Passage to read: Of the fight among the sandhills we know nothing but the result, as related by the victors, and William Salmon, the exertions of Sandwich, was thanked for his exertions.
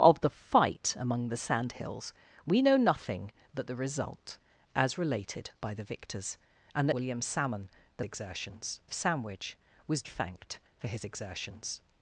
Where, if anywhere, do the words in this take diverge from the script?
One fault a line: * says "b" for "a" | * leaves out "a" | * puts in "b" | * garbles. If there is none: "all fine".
all fine